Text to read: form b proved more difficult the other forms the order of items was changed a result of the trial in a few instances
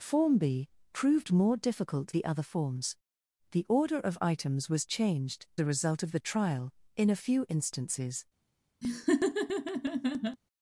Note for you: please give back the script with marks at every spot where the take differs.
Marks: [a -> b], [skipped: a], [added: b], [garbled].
form b proved more difficult the other forms the order of items was changed a result of the trial in a few instances